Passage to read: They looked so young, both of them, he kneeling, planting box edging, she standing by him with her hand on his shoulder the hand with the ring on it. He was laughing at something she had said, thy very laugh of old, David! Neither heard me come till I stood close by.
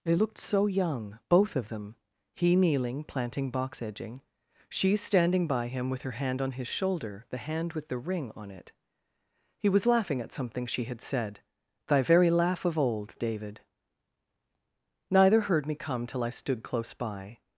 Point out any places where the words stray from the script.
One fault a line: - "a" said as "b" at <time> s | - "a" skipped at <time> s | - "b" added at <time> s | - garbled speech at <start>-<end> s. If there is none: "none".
none